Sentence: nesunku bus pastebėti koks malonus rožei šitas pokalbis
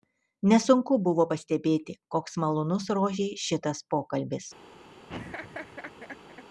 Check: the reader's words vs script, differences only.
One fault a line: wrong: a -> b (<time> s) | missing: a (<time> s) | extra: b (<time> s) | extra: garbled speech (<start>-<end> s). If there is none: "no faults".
wrong: bus -> buvo (1.1 s)